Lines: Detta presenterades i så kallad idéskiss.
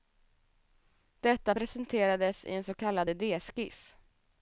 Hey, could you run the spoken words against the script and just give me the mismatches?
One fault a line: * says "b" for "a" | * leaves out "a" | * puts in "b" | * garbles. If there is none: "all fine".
* puts in "en"